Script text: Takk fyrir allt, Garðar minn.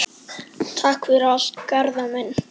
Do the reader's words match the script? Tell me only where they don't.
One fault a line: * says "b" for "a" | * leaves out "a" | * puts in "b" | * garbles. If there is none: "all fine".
all fine